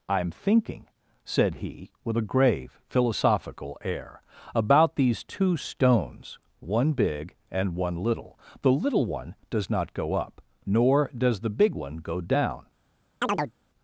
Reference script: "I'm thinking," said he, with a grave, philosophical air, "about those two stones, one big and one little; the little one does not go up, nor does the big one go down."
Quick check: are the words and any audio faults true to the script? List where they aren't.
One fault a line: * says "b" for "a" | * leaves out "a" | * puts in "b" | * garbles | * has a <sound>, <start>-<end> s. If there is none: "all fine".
* says "these" for "those"
* has a chirp, 13.2-13.5 s